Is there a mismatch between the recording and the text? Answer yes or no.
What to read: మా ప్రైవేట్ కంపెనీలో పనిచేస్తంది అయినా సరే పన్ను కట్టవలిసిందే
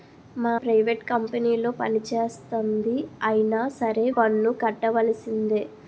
no